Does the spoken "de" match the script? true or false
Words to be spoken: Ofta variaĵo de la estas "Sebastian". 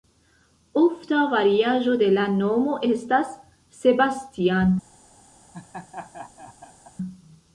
true